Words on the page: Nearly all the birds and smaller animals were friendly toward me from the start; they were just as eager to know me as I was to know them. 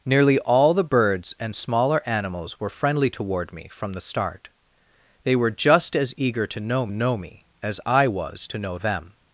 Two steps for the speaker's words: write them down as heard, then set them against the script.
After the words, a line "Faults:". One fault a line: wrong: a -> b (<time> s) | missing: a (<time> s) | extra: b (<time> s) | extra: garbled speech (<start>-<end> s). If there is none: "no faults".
Nearly all the birds and smaller animals were friendly toward me from the start; they were just as eager to know know me as I was to know them.
Faults:
extra: know (6.9 s)